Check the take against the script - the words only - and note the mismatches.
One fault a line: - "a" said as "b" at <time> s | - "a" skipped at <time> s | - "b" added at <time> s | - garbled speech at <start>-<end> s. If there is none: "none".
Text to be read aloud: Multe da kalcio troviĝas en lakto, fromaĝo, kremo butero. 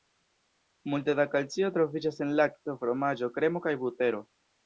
- "kaj" added at 3.7 s